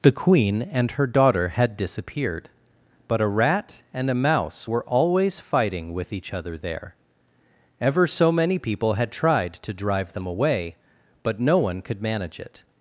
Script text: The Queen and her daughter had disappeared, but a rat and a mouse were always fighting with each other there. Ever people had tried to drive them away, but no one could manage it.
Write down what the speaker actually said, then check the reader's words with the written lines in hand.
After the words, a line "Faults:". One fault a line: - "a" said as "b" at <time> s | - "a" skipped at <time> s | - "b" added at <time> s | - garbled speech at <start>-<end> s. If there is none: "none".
The Queen and her daughter had disappeared, but a rat and a mouse were always fighting with each other there. Ever so many people had tried to drive them away, but no one could manage it.
Faults:
- "so many" added at 8.0 s